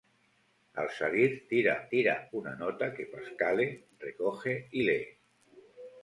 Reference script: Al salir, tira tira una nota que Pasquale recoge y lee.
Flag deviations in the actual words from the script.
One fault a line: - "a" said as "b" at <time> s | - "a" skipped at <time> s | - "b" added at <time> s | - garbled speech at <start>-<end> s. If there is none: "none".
none